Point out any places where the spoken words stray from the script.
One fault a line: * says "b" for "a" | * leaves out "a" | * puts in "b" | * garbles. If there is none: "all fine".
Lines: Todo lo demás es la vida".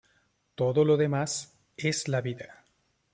all fine